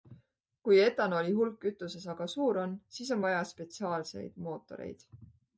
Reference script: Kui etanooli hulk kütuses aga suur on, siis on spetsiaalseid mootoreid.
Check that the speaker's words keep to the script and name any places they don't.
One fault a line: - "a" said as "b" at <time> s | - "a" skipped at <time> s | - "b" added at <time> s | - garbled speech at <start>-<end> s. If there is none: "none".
- "vaja" added at 3.3 s